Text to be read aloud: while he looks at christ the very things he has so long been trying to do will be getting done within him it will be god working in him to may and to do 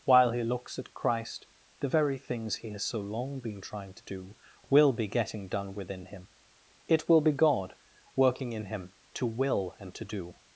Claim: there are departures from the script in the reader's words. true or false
true